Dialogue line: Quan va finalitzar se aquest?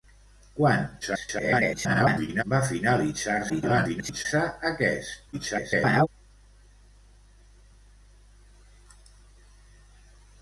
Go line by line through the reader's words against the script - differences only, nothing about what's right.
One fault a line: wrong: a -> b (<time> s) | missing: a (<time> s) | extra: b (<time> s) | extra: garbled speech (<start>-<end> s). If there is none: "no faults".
extra: garbled speech (1.0-2.4 s)
extra: garbled speech (3.5-4.3 s)
extra: garbled speech (5.3-6.1 s)